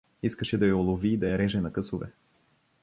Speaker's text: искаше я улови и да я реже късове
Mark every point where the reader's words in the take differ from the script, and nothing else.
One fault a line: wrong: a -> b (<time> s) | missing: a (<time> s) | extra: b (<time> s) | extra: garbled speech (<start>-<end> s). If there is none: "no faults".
extra: да (0.6 s)
extra: на (1.6 s)